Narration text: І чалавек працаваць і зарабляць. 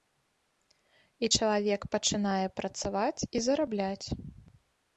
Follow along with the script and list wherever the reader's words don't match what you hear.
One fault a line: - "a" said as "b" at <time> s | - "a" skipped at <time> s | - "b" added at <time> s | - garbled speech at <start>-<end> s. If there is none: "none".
- "пачынае" added at 2.0 s